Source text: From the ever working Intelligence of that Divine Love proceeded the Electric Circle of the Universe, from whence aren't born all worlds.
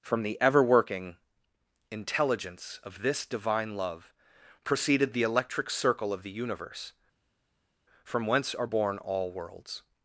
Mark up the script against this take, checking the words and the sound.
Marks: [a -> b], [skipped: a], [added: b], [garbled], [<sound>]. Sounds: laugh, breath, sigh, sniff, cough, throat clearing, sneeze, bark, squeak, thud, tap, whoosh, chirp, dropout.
From the ever working Intelligence of [that -> this] Divine Love proceeded the Electric Circle of the Universe, from whence [aren't -> are] born all worlds.